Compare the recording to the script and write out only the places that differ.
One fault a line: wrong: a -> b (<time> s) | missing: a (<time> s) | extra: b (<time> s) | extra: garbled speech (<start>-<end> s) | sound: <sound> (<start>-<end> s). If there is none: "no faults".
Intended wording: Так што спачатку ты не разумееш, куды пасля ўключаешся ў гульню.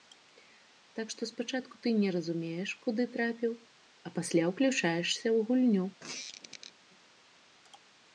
extra: трапіў а (3.2 s)
sound: squeak (6.0-6.7 s)